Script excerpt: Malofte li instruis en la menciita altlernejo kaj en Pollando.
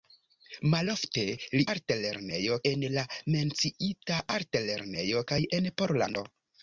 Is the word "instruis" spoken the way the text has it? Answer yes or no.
no